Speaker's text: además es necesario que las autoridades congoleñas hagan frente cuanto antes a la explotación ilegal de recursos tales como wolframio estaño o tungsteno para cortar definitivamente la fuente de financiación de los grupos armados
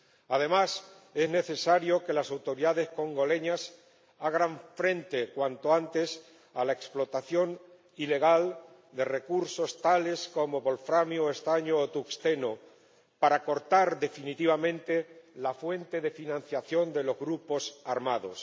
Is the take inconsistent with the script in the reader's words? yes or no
no